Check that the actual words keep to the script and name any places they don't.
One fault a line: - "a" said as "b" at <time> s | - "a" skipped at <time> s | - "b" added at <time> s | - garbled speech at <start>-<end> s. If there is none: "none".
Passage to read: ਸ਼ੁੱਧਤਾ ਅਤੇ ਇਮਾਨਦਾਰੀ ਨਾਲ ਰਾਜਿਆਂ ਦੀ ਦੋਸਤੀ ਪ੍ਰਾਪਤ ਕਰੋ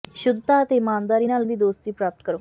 - "ਰਾਜਿਆਂ" skipped at 1.5 s